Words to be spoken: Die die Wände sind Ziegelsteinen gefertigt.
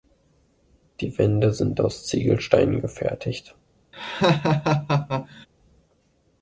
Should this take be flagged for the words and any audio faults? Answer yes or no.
yes